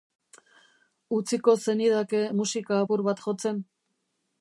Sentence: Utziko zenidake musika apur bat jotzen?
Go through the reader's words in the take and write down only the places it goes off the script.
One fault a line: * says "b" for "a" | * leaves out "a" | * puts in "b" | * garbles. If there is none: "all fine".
all fine